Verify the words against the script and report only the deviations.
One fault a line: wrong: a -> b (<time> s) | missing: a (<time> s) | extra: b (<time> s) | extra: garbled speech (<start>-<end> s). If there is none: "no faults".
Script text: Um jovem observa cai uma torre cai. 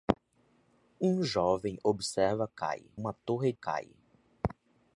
no faults